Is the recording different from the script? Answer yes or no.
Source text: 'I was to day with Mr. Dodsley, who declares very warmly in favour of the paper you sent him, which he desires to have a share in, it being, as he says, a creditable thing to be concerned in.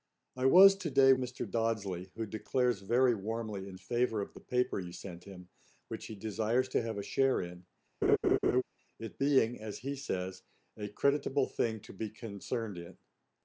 yes